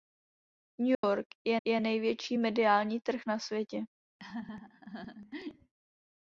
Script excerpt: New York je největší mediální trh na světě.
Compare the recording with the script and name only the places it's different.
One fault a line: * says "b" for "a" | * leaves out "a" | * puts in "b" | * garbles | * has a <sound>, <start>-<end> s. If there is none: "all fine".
* has a dropout, 0.9-1.0 s
* puts in "je"
* has a laugh, 4.2-5.7 s